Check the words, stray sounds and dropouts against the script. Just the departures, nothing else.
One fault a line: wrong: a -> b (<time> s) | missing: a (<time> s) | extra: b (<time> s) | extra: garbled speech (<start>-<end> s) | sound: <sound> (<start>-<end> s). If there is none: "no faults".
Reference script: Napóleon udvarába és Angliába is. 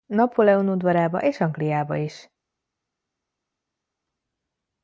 no faults